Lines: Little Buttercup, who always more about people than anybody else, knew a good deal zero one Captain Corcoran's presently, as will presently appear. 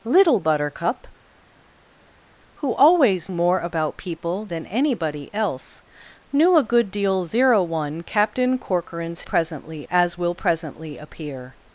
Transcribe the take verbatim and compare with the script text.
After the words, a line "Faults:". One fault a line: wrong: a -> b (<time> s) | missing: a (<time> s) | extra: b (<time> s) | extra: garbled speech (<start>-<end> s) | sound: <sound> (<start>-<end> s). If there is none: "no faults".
Little Buttercup, who always more about people than anybody else, knew a good deal zero one Captain Corcoran's presently, as will presently appear.
Faults:
no faults